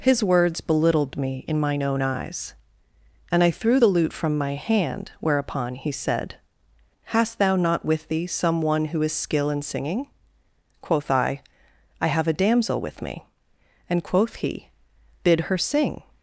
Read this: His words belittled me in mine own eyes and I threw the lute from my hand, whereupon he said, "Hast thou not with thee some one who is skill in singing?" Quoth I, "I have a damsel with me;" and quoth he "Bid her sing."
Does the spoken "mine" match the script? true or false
true